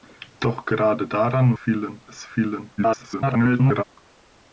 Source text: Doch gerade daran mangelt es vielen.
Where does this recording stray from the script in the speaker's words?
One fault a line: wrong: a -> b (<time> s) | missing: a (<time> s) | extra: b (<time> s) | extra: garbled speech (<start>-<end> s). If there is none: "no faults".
wrong: mangelt -> vielen (1.5 s)
extra: garbled speech (2.8-3.8 s)